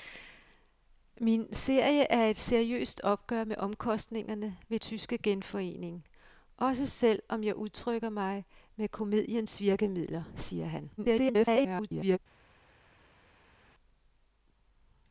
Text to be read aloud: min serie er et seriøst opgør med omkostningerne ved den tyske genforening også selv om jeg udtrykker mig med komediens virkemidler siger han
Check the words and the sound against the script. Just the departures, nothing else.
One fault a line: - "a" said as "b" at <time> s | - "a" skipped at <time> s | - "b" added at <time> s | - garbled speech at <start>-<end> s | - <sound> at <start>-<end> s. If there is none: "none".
- "den" skipped at 4.8 s
- garbled speech at 11.0-12.2 s